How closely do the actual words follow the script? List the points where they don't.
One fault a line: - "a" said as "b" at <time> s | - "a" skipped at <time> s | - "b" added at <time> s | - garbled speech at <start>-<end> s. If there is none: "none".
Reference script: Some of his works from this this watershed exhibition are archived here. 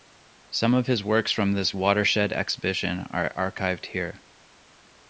- "this" skipped at 1.7 s